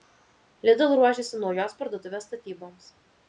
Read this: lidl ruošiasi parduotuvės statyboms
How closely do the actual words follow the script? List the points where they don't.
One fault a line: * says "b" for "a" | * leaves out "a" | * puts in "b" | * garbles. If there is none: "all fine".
* puts in "naujos"